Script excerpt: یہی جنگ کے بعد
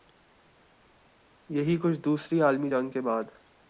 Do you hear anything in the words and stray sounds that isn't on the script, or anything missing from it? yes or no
yes